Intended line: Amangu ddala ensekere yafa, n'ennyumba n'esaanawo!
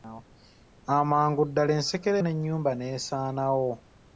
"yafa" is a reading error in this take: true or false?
true